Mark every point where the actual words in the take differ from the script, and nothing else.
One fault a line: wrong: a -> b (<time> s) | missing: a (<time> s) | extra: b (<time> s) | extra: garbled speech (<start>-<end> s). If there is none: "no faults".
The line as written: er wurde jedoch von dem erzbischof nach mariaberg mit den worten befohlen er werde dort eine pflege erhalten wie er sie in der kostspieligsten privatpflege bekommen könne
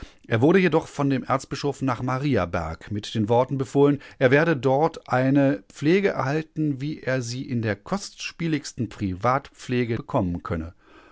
no faults